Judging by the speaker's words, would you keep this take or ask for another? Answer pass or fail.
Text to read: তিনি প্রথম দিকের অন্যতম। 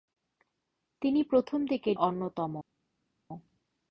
pass